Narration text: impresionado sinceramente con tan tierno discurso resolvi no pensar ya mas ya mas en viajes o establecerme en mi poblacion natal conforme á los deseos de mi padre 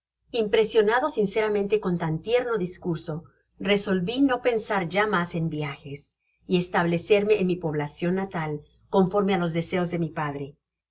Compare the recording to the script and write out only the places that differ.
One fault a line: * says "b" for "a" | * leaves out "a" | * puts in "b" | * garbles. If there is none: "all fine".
* leaves out "ya mas"
* says "y" for "o"